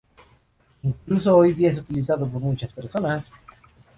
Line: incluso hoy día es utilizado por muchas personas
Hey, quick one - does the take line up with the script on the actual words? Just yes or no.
yes